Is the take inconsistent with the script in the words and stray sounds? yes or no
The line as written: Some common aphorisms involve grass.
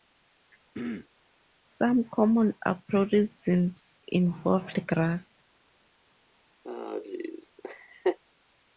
yes